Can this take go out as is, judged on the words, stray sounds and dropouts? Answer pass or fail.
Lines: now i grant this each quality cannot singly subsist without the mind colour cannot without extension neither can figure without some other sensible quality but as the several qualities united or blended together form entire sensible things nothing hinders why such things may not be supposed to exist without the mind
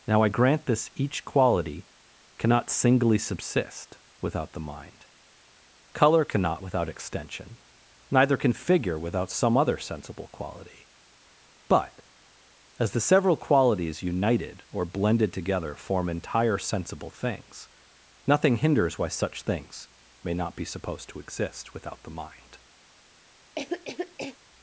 fail